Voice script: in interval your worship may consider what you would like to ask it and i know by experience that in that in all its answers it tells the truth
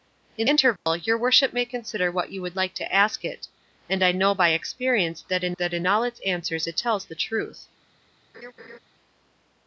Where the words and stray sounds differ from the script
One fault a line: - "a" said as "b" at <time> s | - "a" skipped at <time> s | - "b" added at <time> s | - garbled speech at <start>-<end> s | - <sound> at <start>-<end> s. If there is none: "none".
- dropout at 0.8-0.9 s
- laugh at 8.3-8.8 s